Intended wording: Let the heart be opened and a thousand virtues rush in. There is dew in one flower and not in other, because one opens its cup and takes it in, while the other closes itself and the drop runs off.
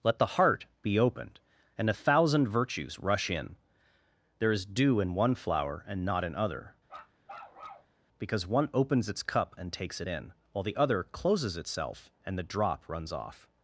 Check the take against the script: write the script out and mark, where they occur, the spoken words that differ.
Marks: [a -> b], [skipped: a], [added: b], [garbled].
Let the heart be opened and a thousand virtues rush in. There is dew in one flower and not in other, because one opens its cup and takes it in, while the other closes itself and the drop runs off.